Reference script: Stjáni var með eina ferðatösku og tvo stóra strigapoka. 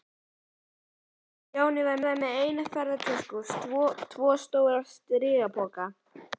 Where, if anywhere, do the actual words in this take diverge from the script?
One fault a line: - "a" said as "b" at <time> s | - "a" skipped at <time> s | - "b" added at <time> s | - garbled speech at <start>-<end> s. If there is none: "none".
- "var" added at 2.1 s